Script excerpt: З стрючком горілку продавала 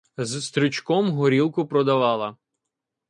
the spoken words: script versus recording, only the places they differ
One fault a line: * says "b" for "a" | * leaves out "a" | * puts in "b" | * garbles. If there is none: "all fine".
all fine